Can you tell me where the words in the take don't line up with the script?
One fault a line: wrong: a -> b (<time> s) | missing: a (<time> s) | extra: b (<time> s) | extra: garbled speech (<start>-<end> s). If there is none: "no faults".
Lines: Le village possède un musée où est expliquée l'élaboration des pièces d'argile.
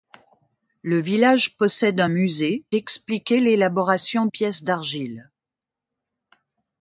missing: où est (2.6 s)
missing: des (4.3 s)